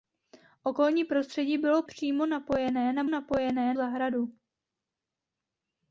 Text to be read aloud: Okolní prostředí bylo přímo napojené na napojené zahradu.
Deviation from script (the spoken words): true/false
false